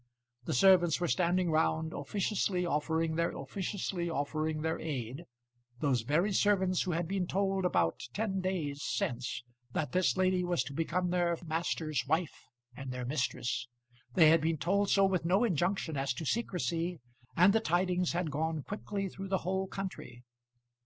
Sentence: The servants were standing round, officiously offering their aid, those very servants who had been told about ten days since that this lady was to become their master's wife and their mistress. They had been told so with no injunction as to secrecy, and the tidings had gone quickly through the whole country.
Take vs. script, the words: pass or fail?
fail